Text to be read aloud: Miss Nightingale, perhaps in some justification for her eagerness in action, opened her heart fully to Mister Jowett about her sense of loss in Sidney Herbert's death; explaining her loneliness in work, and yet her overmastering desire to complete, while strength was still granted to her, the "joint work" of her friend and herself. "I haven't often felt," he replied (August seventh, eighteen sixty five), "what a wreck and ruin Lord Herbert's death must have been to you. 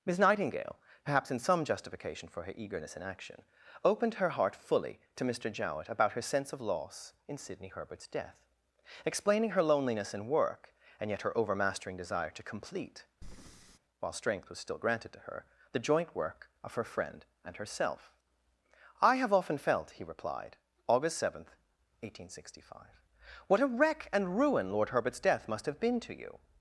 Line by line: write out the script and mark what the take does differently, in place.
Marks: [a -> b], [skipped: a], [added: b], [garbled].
Miss Nightingale, perhaps in some justification for her eagerness in action, opened her heart fully to Mister Jowett about her sense of loss in Sidney Herbert's death; explaining her loneliness in work, and yet her overmastering desire to complete, while strength was still granted to her, the "joint work" of her friend and herself. "I [haven't -> have] often felt," he replied (August seventh, eighteen sixty five), "what a wreck and ruin Lord Herbert's death must have been to you.